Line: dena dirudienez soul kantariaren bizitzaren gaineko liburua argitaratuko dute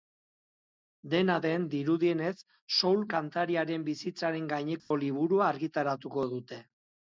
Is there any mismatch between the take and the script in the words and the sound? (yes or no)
yes